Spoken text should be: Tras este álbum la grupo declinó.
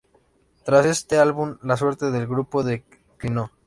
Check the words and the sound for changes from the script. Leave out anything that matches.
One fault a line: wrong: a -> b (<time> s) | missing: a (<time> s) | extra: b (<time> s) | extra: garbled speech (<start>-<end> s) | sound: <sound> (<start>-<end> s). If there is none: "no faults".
extra: suerte del (1.8 s)